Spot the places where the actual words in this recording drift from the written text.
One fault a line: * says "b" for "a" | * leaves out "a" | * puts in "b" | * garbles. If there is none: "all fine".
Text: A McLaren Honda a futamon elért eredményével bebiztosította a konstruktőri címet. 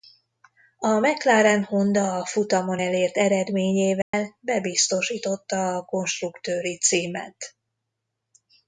all fine